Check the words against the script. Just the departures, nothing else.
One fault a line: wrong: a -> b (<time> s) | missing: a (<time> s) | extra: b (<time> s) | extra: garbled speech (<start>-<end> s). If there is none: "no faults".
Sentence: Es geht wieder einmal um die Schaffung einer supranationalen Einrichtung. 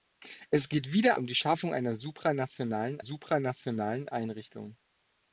missing: einmal (1.2 s)
extra: supranationalen (3.0 s)